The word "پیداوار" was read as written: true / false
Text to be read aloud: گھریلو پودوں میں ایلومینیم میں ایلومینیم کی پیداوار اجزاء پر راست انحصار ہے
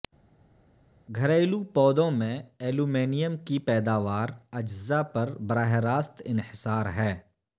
true